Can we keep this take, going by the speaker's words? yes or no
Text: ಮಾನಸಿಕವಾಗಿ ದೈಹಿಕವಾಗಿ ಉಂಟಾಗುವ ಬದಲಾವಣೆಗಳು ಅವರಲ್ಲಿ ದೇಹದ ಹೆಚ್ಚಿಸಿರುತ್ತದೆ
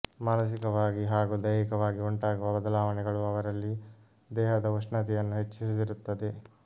no